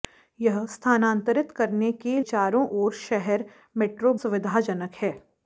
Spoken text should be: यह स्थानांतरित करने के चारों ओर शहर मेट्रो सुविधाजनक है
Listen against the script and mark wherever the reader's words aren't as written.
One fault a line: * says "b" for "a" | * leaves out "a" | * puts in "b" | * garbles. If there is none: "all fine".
all fine